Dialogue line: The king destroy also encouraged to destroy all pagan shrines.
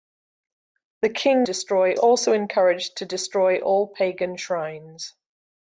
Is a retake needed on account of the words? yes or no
no